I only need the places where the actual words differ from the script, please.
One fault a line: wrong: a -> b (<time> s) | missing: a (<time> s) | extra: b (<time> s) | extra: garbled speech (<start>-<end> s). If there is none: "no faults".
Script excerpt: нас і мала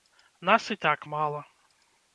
extra: так (0.7 s)